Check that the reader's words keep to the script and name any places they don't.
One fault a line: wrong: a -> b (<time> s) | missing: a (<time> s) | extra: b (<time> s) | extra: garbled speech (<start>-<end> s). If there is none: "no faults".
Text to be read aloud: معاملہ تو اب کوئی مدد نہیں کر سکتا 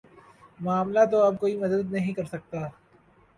no faults